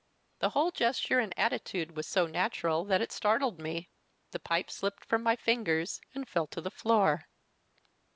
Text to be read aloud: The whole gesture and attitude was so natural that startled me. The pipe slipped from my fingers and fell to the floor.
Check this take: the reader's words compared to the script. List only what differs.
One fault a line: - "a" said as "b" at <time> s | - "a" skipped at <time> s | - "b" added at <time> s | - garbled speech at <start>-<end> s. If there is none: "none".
- "it" added at 3.0 s